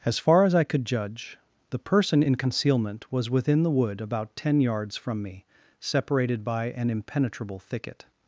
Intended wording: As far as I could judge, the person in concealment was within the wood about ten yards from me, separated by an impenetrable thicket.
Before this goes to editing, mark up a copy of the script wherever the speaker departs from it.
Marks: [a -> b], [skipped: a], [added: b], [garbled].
As far as I could judge, the person in concealment was within the wood about ten yards from me, separated by an impenetrable thicket.